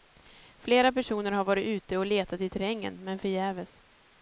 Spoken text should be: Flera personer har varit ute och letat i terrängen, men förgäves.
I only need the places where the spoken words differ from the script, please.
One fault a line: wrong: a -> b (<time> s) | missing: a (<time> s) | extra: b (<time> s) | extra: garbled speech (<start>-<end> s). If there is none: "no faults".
no faults